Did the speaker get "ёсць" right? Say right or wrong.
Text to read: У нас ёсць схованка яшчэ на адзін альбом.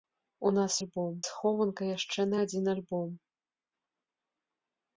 wrong